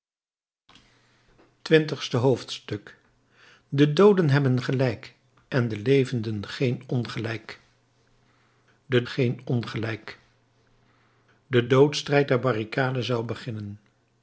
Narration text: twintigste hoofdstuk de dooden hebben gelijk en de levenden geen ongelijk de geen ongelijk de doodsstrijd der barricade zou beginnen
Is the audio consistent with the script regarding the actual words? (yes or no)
yes